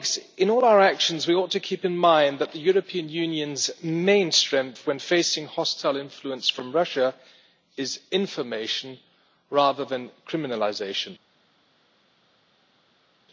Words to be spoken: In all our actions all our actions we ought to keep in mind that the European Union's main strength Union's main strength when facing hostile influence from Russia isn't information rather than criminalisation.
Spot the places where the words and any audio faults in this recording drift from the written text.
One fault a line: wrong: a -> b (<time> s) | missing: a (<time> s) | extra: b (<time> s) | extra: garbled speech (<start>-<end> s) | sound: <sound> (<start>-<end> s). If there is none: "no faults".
missing: all our actions (1.3 s)
missing: Union's main strength (4.9 s)
wrong: isn't -> is (7.8 s)